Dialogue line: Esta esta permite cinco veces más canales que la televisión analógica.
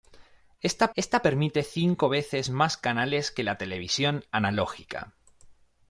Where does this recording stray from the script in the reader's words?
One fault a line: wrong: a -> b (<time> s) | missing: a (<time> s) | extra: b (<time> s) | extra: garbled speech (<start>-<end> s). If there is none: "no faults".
no faults